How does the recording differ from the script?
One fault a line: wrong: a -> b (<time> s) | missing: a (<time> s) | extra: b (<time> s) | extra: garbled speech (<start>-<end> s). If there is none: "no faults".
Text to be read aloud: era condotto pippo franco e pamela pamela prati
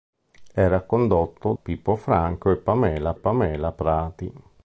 no faults